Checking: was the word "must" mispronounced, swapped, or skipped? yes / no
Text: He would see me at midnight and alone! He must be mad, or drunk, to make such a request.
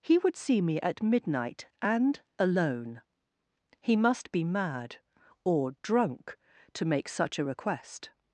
no